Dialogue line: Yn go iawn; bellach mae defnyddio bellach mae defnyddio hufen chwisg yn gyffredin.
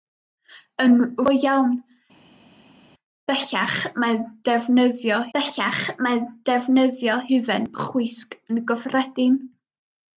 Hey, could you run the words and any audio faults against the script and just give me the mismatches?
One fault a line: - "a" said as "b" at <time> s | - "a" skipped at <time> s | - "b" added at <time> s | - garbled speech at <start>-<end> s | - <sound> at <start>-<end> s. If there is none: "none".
none